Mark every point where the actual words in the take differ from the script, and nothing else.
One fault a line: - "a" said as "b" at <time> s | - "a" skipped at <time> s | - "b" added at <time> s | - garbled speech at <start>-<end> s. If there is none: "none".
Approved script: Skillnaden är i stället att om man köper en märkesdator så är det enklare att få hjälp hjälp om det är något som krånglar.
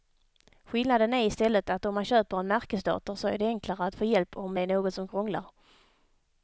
- "hjälp" skipped at 4.4 s